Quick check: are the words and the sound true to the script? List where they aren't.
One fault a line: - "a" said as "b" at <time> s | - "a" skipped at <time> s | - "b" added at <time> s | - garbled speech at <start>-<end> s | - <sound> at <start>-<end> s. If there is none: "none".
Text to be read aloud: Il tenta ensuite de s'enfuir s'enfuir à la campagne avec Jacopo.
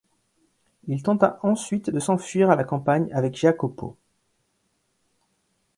- "s'enfuir" skipped at 2.5 s